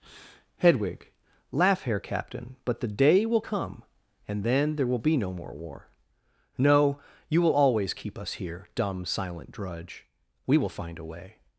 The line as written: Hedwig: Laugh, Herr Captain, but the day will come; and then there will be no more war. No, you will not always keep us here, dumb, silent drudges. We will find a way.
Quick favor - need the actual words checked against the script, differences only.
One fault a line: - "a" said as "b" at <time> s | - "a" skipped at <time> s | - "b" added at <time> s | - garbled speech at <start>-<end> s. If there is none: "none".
- "not" skipped at 7.5 s
- "drudges" said as "drudge" at 9.5 s